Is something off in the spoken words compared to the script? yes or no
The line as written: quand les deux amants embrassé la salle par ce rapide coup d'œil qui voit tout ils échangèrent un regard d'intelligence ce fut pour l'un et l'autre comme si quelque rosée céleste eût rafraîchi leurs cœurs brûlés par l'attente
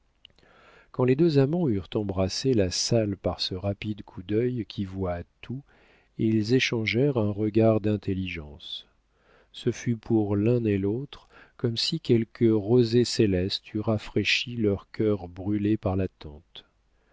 yes